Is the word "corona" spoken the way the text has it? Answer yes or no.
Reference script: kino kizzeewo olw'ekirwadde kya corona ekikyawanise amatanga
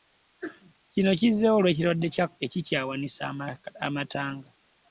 no